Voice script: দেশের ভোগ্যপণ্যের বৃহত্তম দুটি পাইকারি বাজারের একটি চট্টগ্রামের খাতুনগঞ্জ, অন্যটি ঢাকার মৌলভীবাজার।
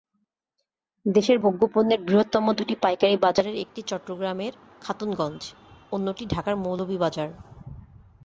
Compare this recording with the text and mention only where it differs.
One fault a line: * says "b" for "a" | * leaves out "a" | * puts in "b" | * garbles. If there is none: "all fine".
all fine